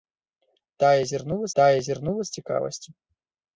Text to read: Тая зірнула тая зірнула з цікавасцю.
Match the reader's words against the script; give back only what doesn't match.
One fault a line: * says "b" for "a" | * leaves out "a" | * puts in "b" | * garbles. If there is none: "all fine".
all fine